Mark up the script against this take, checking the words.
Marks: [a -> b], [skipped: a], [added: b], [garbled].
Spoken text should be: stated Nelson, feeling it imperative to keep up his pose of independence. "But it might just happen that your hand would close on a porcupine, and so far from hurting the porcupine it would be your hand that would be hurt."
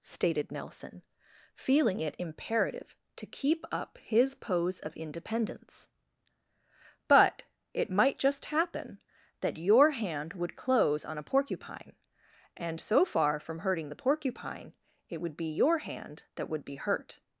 stated Nelson, feeling it imperative to keep up his pose of independence. "But it might just happen that your hand would close on a porcupine, and so far from hurting the porcupine it would be your hand that would be hurt."